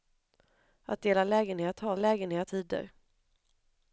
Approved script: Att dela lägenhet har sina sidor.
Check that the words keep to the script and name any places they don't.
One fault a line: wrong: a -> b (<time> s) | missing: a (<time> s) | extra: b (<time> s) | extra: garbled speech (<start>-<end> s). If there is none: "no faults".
wrong: sina -> lägenhet (2.0 s)